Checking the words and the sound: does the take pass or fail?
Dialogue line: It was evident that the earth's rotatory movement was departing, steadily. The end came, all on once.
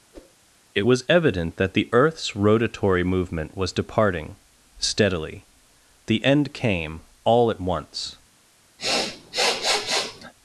fail